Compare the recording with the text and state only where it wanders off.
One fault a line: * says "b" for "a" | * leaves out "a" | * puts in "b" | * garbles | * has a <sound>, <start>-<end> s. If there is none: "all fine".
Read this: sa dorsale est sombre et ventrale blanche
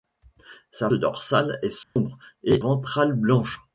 * has a dropout, 1.8-2.0 s